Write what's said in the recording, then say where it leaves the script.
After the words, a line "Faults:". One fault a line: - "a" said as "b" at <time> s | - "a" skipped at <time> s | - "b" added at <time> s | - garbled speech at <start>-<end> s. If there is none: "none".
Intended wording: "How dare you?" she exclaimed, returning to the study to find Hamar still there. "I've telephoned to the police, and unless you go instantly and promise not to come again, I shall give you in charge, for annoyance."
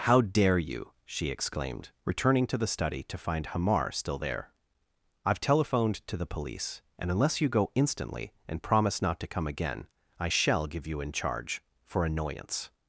"How dare you?" she exclaimed, returning to the study to find Hamar still there. "I've telephoned to the police, and unless you go instantly and promise not to come again, I shall give you in charge, for annoyance."
Faults:
none